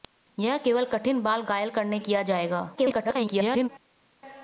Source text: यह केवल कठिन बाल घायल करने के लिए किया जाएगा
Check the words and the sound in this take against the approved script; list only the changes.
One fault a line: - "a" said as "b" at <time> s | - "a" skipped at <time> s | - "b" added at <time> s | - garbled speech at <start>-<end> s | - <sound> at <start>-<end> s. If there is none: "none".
- "के लिए" skipped at 2.0 s
- garbled speech at 2.8-3.7 s